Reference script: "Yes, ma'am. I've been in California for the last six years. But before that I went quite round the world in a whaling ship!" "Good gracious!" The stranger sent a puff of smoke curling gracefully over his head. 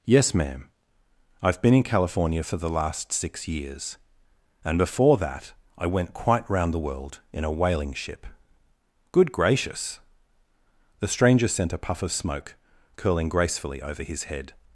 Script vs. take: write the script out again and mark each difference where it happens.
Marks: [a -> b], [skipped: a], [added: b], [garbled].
"Yes, ma'am. I've been in California for the last six years. [But -> And] before that I went quite round the world in a whaling ship!" "Good gracious!" The stranger sent a puff of smoke curling gracefully over his head.